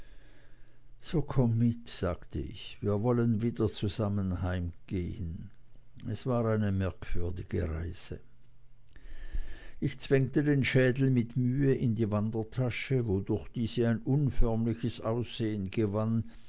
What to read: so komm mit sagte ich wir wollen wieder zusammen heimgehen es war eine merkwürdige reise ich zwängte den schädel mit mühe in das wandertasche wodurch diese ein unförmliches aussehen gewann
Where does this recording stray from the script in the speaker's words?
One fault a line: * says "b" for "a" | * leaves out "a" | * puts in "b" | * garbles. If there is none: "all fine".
* says "die" for "das"